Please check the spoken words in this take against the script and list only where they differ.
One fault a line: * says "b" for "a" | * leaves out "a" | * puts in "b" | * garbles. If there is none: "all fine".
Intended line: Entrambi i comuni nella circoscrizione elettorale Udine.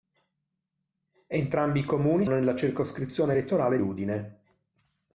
all fine